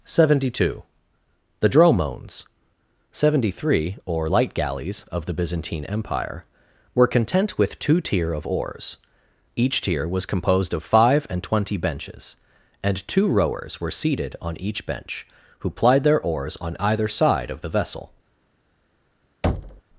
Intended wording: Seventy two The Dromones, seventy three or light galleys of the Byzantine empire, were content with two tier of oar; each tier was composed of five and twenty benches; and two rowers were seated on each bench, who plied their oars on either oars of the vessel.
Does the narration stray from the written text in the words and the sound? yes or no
yes